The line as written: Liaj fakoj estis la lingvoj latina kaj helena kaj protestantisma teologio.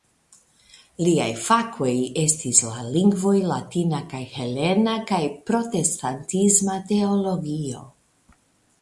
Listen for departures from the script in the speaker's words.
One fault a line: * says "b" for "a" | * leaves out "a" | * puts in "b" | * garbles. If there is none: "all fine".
all fine